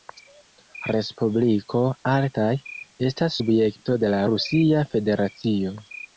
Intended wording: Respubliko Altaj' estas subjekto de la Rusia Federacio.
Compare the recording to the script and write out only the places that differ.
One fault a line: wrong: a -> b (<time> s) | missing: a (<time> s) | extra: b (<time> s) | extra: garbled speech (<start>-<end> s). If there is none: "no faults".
no faults